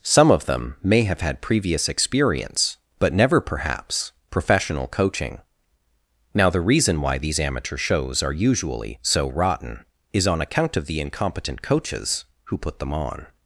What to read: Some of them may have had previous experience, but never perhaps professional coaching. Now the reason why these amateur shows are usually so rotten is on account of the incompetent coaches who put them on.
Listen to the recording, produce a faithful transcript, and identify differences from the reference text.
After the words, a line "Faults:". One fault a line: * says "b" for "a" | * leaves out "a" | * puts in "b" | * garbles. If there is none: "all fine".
Some of them may have had previous experience, but never perhaps professional coaching. Now the reason why these amateur shows are usually so rotten is on account of the incompetent coaches who put them on.
Faults:
all fine